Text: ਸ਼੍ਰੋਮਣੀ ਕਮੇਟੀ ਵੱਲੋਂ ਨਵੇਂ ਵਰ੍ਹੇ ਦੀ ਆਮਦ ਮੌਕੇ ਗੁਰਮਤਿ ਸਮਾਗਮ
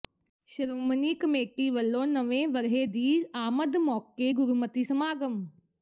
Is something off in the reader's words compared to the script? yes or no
no